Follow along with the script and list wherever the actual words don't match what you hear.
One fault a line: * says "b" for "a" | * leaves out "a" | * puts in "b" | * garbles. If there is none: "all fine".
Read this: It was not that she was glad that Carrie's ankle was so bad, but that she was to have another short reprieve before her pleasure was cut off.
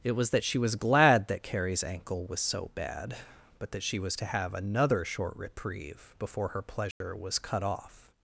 * leaves out "not"